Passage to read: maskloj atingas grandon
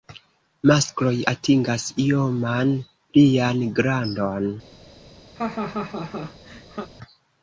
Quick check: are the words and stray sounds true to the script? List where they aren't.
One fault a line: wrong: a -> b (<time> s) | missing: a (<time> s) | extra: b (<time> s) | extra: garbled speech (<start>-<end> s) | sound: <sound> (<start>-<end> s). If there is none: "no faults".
extra: ioman plian (2.1 s)
sound: laugh (5.3-6.9 s)